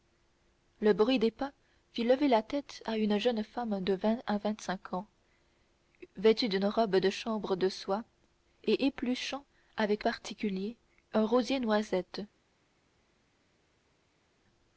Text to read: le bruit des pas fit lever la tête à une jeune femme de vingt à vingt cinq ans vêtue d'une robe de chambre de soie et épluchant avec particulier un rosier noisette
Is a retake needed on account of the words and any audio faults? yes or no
no